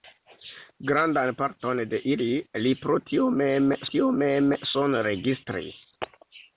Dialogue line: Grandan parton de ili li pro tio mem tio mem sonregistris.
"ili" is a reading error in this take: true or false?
false